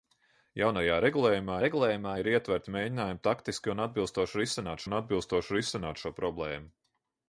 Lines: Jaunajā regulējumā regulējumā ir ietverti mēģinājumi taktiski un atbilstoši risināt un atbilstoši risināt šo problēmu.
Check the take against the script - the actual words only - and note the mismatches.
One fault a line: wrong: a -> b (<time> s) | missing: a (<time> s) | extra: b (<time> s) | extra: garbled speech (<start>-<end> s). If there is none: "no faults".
no faults